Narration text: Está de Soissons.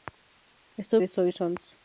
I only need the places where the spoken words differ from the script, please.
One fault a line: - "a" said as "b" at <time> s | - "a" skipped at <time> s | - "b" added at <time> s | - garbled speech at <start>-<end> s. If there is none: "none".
none